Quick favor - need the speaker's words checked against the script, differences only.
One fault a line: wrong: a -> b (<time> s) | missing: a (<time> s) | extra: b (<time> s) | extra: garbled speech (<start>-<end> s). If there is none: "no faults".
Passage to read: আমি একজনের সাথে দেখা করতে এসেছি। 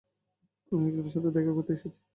no faults